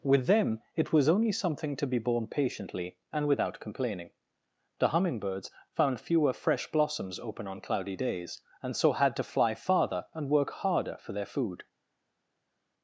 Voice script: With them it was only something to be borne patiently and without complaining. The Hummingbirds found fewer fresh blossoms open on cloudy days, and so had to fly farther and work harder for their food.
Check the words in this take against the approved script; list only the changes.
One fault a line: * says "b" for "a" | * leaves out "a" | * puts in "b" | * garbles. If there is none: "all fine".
all fine